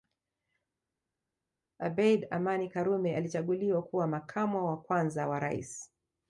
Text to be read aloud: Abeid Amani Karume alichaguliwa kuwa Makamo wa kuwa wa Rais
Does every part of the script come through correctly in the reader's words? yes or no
no